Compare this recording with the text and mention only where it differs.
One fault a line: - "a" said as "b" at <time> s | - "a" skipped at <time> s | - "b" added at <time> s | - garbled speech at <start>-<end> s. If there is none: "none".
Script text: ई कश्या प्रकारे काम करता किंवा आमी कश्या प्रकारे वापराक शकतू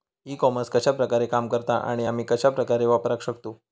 - "कॉमर्स" added at 0.3 s
- "किंवा" said as "आणि" at 1.8 s